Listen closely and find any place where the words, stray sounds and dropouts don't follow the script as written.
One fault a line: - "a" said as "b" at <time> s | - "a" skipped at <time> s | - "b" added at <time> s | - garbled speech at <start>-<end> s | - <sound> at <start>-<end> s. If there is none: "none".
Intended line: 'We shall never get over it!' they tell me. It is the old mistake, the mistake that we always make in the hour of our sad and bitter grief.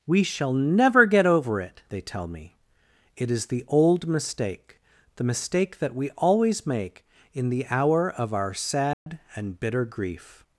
- dropout at 8.9-9.1 s